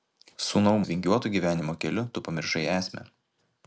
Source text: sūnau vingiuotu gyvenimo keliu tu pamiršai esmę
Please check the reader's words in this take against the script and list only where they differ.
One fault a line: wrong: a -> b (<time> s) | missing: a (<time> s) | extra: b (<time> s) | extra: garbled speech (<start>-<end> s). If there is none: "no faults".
no faults